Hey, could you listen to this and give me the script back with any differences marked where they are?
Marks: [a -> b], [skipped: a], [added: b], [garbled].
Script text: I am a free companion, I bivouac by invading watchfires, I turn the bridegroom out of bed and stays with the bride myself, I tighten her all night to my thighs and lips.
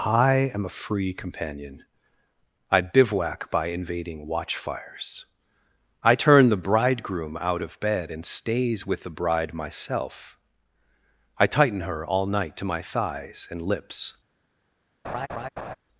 I am a free companion, I bivouac by invading watchfires, I turn the bridegroom out of bed and stays with the bride myself, I tighten her all night to my thighs and lips.